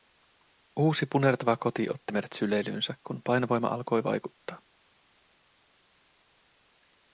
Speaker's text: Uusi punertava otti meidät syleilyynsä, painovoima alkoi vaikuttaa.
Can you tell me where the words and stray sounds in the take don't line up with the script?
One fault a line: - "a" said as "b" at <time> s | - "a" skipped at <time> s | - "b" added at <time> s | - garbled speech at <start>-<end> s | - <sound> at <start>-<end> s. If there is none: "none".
- "koti" added at 1.6 s
- "kun" added at 3.1 s